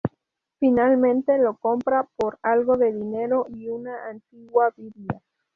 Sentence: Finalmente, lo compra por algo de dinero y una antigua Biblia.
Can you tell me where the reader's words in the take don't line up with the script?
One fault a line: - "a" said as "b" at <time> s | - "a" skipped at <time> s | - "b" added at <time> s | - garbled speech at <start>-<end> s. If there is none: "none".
none